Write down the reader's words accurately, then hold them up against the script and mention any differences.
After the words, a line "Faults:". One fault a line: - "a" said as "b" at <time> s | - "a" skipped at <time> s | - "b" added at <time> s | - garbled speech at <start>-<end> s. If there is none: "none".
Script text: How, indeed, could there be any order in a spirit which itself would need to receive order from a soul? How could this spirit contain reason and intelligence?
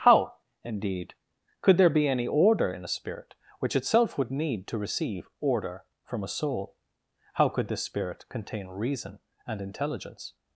How, indeed, could there be any order in a spirit which itself would need to receive order from a soul? How could this spirit contain reason and intelligence?
Faults:
none